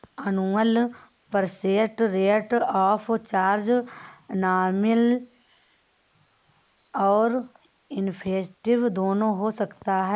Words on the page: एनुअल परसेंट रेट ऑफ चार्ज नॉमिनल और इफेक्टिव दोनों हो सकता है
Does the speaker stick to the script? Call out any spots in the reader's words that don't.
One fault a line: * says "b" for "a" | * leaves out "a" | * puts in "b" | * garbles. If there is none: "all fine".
all fine